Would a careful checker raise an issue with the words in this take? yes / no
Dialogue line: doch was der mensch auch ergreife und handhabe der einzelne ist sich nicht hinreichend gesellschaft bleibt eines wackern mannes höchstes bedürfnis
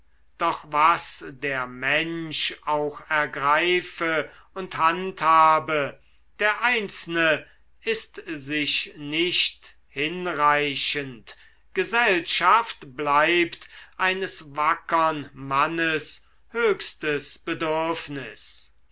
no